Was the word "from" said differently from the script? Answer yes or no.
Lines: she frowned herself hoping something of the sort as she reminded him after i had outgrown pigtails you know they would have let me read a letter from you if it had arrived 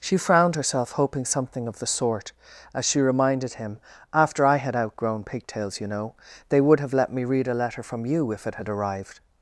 no